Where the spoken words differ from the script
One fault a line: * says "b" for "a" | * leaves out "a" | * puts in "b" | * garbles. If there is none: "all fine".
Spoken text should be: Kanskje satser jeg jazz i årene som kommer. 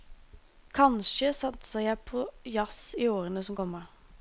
* puts in "på"